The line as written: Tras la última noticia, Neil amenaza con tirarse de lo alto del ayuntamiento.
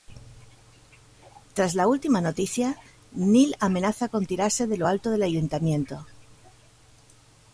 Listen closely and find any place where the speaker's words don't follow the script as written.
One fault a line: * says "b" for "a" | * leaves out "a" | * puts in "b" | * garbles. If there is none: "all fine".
all fine